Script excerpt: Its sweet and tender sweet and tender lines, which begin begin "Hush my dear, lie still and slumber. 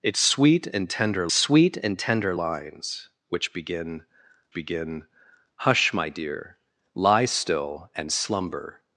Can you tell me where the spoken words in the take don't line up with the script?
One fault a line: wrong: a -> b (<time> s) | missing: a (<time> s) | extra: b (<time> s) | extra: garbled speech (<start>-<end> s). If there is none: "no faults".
no faults